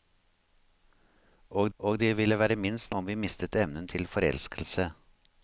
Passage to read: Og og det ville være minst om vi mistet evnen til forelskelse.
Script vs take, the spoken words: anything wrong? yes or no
no